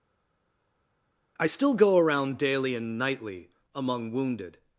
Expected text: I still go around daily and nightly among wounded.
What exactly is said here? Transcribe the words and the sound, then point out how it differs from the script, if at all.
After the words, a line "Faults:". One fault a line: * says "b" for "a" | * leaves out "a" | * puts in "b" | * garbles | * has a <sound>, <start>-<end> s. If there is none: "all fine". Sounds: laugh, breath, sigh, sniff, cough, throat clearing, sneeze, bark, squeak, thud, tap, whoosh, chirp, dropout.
I still go around daily and nightly among wounded.
Faults:
all fine